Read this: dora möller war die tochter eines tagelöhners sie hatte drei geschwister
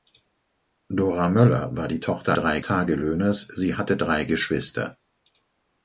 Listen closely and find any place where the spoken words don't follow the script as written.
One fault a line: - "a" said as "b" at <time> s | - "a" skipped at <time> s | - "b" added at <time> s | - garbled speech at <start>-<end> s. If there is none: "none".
- "eines" said as "drei" at 2.3 s